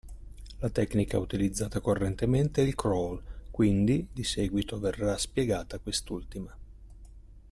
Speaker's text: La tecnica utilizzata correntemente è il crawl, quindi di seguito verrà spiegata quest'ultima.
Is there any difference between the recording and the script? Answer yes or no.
no